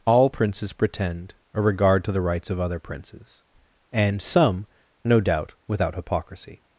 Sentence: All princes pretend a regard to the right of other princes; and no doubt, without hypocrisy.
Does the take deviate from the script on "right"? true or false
true